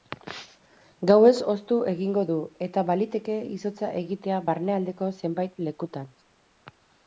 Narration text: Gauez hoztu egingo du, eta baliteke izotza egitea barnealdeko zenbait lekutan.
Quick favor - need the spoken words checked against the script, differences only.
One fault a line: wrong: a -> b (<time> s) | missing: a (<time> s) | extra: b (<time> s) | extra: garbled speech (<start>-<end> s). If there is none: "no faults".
no faults